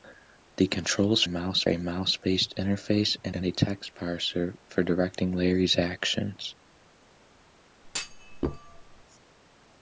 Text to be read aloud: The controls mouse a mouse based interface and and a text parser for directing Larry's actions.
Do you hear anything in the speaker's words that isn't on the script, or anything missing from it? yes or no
no